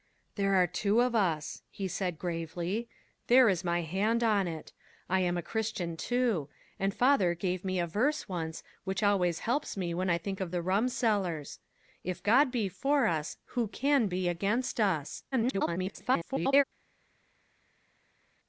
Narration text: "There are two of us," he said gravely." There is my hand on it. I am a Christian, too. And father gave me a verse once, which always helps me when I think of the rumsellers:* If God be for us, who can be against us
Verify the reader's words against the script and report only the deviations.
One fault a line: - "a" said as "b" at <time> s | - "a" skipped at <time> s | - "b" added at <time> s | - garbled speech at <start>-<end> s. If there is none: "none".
- garbled speech at 15.3-16.6 s